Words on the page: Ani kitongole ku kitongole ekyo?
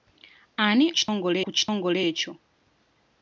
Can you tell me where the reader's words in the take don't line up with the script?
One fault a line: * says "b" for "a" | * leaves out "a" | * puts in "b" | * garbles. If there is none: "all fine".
all fine